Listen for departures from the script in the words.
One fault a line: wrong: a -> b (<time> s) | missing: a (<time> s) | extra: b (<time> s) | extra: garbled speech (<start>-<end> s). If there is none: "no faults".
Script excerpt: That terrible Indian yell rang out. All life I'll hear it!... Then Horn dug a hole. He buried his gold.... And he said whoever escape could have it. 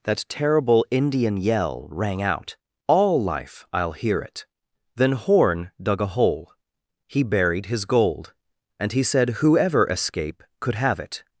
no faults